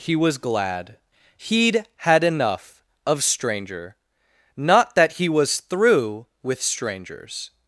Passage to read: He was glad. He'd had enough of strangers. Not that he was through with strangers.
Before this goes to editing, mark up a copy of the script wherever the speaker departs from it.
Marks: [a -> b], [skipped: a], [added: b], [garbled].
He was glad. He'd had enough of [strangers. -> stranger] Not that he was through with strangers.